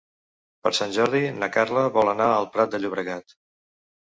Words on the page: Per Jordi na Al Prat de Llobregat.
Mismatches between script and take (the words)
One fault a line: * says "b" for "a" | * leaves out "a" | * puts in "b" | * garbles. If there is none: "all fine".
* puts in "Sant"
* puts in "Carla vol anar"